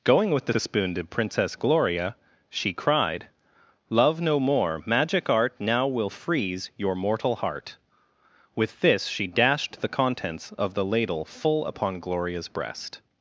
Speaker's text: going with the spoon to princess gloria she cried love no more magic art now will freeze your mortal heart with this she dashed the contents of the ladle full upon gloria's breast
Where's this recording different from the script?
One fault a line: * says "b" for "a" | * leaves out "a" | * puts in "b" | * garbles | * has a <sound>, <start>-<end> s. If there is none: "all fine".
* puts in "the"